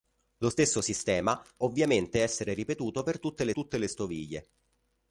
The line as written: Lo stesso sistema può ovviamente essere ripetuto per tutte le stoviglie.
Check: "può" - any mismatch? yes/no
yes